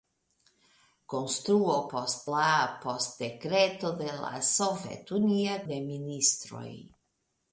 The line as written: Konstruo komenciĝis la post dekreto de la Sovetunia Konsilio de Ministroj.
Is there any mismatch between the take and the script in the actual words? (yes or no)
yes